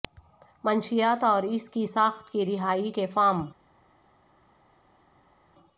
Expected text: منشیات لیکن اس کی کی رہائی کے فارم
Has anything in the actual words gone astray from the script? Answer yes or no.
yes